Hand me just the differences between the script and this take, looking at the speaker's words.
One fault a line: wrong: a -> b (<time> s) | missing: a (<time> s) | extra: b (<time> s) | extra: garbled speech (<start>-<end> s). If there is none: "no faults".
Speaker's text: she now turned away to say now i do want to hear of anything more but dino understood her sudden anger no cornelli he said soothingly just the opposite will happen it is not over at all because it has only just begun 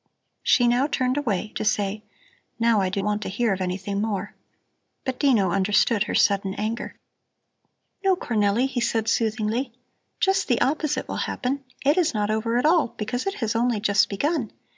no faults